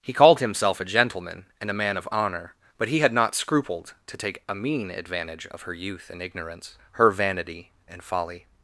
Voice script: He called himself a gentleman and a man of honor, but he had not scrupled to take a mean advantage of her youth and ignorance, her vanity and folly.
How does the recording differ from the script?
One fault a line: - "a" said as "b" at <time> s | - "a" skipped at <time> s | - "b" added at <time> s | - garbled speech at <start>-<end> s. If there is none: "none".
none